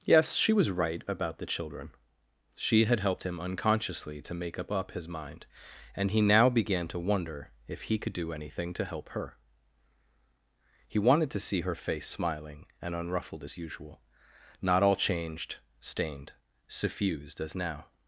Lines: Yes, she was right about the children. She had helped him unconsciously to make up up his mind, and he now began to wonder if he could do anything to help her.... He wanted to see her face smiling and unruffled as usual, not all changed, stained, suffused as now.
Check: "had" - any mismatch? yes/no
no